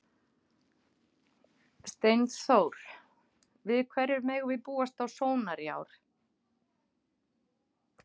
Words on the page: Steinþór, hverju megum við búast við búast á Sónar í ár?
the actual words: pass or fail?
fail